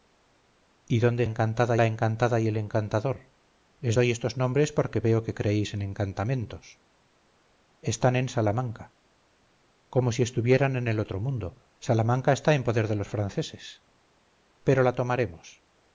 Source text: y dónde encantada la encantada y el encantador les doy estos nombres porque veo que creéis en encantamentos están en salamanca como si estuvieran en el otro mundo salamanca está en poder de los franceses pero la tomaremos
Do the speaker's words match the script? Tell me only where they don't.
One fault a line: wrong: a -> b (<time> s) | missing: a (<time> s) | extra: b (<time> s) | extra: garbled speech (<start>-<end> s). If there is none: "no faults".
no faults